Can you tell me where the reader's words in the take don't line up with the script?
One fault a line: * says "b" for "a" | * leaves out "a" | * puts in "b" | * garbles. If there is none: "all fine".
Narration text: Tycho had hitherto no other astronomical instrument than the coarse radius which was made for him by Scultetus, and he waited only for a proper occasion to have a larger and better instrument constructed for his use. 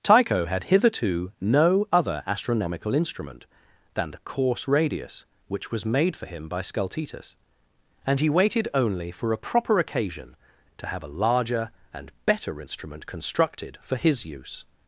all fine